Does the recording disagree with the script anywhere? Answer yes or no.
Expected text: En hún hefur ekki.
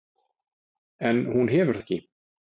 no